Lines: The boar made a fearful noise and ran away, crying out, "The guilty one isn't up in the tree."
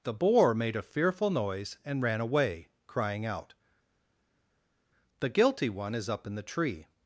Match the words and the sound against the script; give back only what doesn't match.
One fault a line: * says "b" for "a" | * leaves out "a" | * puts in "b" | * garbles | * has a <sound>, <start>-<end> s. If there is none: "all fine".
* says "is" for "isn't"